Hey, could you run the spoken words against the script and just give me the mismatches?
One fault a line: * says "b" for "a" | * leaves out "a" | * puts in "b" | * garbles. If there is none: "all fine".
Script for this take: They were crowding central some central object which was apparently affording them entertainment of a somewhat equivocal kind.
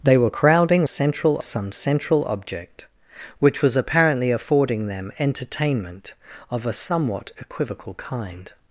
all fine